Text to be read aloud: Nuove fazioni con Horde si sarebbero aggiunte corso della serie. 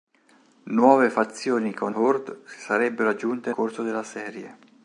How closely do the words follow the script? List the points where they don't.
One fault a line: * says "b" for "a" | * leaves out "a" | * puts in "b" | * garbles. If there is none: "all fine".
all fine